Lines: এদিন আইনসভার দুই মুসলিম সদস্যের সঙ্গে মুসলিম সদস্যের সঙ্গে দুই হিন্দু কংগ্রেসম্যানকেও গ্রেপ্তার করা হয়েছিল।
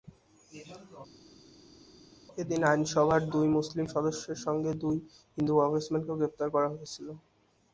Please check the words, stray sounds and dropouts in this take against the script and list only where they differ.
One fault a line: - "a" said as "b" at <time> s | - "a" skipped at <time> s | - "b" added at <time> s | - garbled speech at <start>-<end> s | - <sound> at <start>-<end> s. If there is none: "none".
- "মুসলিম সদস্যের সঙ্গে" skipped at 4.7 s